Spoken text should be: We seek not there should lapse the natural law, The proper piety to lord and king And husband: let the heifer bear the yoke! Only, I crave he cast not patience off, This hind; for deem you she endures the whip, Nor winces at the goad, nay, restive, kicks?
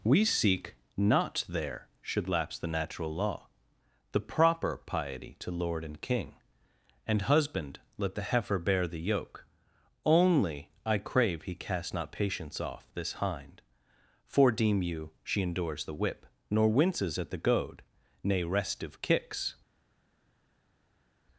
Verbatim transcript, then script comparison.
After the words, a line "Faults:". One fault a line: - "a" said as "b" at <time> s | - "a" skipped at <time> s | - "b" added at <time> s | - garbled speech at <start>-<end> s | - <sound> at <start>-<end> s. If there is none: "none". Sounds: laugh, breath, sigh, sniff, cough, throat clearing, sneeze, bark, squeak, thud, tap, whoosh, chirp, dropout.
We seek not there should lapse the natural law, The proper piety to lord and king And husband: let the heifer bear the yoke! Only, I crave he cast not patience off, This hind; for deem you she endures the whip, Nor winces at the goad, nay, restive, kicks?
Faults:
none